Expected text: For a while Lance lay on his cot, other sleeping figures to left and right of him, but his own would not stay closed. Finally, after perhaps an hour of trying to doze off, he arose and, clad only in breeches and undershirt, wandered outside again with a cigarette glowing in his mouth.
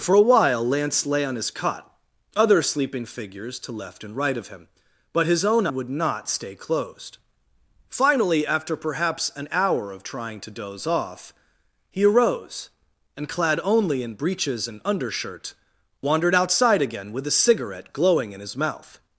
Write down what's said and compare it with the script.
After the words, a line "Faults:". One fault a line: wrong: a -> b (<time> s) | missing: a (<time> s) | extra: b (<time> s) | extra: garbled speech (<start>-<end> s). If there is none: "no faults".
For a while Lance lay on his cot, other sleeping figures to left and right of him, but his own would not stay closed. Finally, after perhaps an hour of trying to doze off, he arose and, clad only in breeches and undershirt, wandered outside again with a cigarette glowing in his mouth.
Faults:
no faults